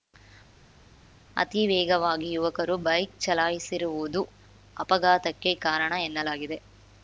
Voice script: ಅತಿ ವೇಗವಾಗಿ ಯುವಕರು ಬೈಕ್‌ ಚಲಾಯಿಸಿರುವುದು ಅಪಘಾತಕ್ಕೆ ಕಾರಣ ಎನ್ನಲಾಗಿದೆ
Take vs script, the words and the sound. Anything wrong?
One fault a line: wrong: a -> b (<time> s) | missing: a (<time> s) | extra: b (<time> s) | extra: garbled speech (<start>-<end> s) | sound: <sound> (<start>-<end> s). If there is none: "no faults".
no faults